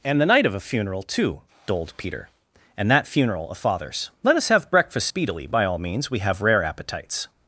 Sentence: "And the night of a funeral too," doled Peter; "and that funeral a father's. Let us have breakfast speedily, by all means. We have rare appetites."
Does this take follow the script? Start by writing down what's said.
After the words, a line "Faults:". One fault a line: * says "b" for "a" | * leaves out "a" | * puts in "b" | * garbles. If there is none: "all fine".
"And the night of a funeral too," doled Peter; "and that funeral a father's. Let us have breakfast speedily, by all means. We have rare appetites."
Faults:
all fine